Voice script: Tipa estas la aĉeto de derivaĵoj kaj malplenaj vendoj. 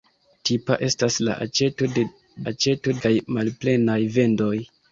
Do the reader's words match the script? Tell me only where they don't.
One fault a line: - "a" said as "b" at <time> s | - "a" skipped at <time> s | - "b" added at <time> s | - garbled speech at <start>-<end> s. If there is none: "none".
- "derivaĵoj" said as "aĉeto" at 2.5 s